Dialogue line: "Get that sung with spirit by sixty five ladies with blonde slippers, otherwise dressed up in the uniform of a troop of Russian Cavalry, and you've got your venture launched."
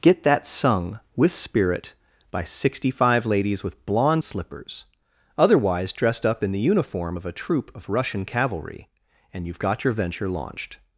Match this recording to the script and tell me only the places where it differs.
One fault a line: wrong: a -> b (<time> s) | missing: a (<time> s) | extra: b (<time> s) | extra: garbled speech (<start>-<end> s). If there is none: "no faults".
no faults